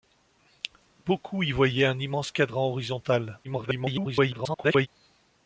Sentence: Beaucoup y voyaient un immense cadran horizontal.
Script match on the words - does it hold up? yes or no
no